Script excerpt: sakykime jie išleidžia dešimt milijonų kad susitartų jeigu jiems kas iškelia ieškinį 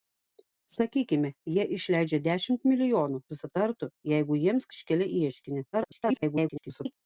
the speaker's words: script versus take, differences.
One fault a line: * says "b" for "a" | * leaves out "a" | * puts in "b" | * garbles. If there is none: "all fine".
* leaves out "kad"
* leaves out "kas"
* garbles